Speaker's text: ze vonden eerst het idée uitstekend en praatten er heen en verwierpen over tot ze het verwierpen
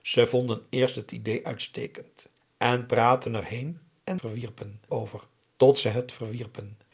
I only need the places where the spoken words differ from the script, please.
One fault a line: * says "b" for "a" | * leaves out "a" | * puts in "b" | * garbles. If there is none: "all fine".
all fine